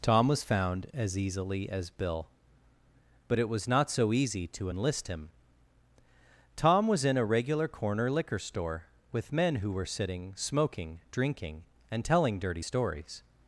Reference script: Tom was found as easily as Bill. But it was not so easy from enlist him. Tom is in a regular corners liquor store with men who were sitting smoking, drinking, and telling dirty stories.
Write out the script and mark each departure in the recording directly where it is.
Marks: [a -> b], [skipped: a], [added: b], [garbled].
Tom was found as easily as Bill. But it was not so easy [from -> to] enlist him. Tom [is -> was] in a regular [corners -> corner] liquor store with men who were sitting smoking, drinking, and telling dirty stories.